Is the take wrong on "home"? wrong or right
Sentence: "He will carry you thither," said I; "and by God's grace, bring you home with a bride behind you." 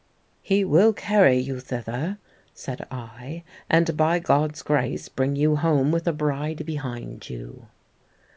right